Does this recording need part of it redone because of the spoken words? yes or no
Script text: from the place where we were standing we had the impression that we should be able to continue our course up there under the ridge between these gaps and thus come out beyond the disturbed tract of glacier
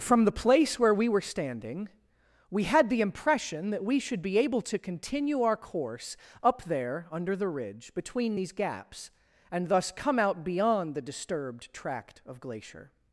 no